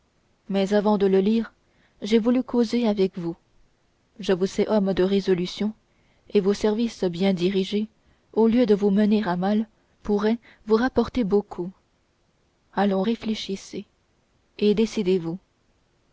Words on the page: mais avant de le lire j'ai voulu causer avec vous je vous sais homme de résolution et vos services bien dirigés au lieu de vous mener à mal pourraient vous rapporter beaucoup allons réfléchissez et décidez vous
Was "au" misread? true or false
false